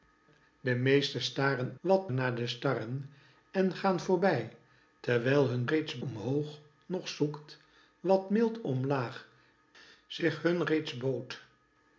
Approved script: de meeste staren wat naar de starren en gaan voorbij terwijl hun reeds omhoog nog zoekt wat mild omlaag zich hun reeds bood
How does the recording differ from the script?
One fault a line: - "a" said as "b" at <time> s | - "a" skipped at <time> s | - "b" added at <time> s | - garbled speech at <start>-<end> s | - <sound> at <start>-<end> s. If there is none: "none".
none